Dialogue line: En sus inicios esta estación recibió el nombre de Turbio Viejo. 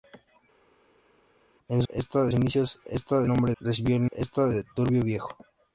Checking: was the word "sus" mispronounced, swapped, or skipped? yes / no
yes